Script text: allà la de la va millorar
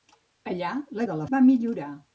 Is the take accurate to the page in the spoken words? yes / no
yes